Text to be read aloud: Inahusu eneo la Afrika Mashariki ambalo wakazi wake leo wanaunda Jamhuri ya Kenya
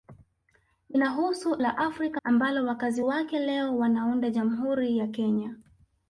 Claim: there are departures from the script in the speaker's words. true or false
true